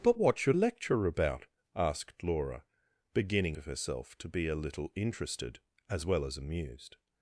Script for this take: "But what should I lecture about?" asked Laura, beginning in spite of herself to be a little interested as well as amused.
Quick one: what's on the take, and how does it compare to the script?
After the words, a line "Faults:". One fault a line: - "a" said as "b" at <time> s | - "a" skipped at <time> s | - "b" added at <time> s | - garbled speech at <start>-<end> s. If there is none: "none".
"But what should lecture about?" asked Laura, beginning of herself to be a little interested as well as amused.
Faults:
- "I" skipped at 0.6 s
- "in spite" skipped at 3.6 s